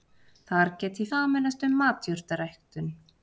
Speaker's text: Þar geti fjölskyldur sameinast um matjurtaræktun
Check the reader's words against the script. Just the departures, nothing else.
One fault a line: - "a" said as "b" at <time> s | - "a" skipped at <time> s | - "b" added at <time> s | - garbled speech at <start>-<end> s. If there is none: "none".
- "fjölskyldur" skipped at 1.1 s